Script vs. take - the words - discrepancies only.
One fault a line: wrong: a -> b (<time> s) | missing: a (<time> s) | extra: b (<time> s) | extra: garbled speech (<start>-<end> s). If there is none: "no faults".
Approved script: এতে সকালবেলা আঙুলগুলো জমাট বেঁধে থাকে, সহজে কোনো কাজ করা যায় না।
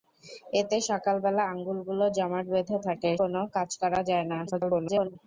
missing: সহজে (3.1 s)
extra: garbled speech (4.5-5.2 s)